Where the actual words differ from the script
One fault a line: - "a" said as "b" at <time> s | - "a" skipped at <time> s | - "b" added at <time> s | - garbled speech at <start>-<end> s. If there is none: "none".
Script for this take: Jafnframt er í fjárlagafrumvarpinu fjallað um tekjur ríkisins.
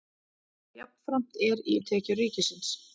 - "fjárlagafrumvarpinu fjallað" skipped at 1.8 s